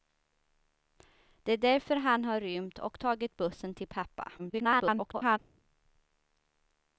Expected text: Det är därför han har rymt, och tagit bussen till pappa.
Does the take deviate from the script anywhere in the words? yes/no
yes